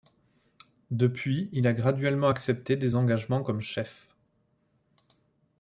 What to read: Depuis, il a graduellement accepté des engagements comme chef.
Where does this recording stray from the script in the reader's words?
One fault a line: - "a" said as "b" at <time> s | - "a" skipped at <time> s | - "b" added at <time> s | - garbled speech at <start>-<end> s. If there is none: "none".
none